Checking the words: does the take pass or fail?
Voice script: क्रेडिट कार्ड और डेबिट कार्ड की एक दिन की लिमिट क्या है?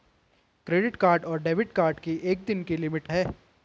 fail